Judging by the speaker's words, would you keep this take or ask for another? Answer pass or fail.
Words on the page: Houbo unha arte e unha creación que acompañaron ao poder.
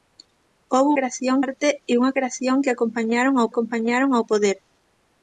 fail